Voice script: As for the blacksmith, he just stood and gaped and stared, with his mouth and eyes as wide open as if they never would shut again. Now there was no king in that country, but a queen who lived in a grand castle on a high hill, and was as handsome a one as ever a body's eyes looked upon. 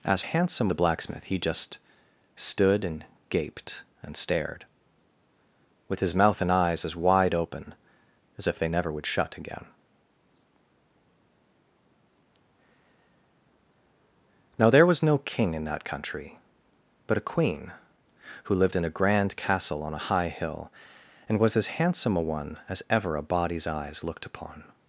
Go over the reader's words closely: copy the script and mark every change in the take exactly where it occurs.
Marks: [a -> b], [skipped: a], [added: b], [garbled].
As [for -> handsome] the blacksmith, he just stood and gaped and stared, with his mouth and eyes as wide open as if they never would shut again. Now there was no king in that country, but a queen who lived in a grand castle on a high hill, and was as handsome a one as ever a body's eyes looked upon.